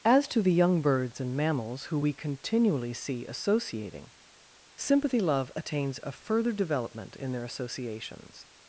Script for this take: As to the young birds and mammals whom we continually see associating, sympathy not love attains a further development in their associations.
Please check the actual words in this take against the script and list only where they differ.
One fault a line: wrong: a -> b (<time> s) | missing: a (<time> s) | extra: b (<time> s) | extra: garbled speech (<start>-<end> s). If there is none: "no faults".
wrong: whom -> who (1.9 s)
missing: not (5.2 s)